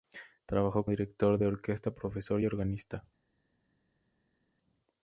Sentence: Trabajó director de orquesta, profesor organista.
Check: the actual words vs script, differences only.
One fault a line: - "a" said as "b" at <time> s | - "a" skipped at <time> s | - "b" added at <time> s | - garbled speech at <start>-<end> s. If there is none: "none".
none